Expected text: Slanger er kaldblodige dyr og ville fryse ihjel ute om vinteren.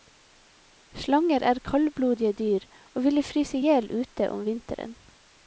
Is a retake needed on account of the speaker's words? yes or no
no